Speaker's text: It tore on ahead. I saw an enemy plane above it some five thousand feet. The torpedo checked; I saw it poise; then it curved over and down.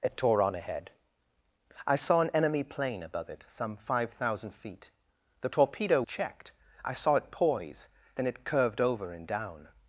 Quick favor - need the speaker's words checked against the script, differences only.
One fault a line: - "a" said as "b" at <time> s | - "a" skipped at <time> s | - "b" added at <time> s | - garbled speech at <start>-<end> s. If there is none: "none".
none